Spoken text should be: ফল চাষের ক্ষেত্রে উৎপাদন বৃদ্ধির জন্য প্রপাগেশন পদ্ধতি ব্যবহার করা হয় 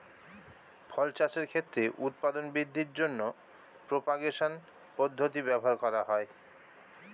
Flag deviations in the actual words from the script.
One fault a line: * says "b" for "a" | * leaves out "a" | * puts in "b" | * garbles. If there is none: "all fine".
all fine